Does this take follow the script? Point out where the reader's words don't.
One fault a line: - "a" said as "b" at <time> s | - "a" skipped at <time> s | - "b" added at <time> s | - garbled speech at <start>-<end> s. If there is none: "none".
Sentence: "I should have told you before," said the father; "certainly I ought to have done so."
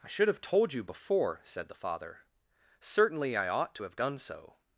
none